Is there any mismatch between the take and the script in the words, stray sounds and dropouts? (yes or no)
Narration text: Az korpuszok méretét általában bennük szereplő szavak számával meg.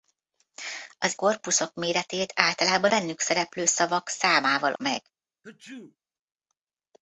yes